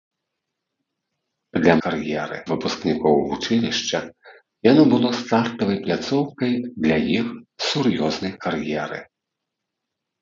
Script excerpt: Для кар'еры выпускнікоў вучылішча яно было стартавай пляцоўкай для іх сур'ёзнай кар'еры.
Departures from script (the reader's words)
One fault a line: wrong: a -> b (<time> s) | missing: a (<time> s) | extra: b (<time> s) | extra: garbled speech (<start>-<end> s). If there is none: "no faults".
no faults